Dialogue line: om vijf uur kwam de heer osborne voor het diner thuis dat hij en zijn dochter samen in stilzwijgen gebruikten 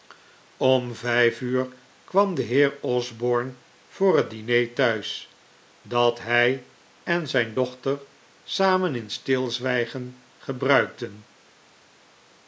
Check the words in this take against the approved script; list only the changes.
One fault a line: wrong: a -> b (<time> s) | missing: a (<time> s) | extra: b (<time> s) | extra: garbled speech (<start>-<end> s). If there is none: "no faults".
no faults